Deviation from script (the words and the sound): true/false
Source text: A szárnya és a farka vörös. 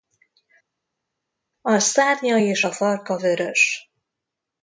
false